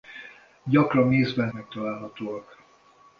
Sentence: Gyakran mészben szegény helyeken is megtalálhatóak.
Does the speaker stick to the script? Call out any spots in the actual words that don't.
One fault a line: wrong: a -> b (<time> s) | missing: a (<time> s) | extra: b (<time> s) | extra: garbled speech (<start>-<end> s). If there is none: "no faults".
missing: szegény helyeken is (1.5 s)